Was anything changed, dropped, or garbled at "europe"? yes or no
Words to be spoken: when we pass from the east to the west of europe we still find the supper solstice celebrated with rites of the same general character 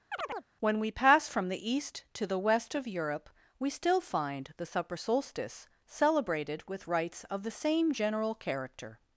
no